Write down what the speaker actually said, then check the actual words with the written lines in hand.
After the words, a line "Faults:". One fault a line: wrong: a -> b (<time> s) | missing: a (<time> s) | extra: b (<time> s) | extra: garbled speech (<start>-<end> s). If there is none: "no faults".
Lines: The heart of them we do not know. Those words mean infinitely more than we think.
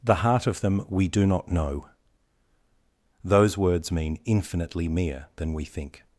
The heart of them we do not know. Those words mean infinitely mere than we think.
Faults:
wrong: more -> mere (4.9 s)